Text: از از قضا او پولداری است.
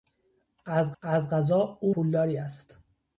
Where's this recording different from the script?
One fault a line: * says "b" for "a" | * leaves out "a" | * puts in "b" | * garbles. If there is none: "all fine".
all fine